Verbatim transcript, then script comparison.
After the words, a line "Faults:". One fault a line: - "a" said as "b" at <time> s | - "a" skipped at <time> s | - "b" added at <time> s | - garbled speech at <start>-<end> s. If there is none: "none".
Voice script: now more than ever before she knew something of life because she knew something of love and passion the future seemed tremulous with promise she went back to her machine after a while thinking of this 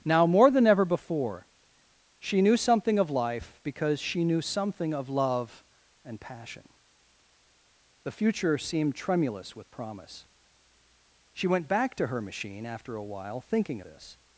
now more than ever before she knew something of life because she knew something of love and passion the future seemed tremulous with promise she went back to her machine after a while thinking this
Faults:
- "of" skipped at 13.8 s